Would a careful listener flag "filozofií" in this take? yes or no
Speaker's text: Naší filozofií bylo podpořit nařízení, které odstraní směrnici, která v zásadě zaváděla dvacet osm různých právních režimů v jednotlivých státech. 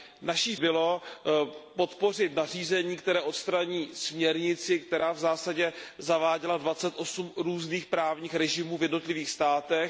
yes